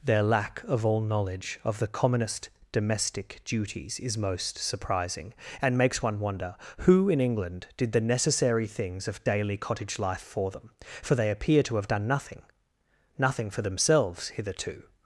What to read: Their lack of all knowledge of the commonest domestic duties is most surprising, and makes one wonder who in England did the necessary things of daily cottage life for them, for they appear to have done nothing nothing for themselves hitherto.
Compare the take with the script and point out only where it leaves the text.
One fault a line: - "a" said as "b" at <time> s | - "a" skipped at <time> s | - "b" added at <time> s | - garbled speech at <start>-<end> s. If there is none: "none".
none